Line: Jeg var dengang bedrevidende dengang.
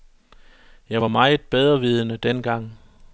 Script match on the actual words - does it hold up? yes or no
no